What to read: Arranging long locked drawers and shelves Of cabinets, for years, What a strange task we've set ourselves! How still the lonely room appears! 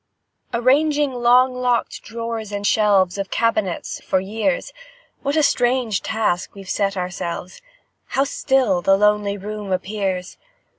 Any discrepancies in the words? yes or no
no